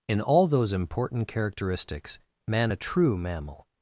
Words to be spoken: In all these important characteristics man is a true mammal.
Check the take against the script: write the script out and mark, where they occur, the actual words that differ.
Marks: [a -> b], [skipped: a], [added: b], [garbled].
In all [these -> those] important characteristics man [skipped: is] a true mammal.